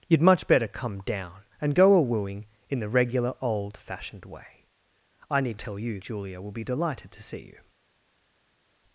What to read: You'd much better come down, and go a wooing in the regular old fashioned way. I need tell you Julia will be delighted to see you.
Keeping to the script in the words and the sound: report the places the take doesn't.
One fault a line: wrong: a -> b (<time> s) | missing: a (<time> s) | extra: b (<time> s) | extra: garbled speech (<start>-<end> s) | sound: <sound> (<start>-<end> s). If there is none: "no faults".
no faults